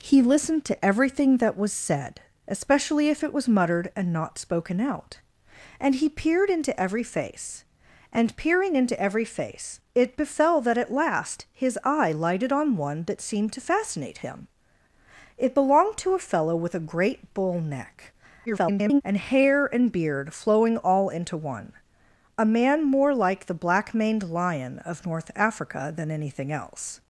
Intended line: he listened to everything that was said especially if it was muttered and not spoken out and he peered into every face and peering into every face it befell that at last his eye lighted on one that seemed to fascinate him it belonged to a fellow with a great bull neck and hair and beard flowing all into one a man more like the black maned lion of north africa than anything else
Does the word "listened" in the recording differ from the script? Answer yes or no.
no